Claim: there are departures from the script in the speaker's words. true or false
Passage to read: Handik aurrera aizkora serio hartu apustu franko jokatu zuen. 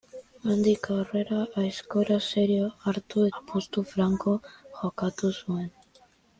false